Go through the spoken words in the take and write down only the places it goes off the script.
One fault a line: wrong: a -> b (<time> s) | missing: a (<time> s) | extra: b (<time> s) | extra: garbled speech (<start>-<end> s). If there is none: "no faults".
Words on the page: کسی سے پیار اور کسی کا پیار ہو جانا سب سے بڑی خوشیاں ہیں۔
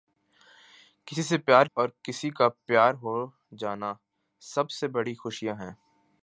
no faults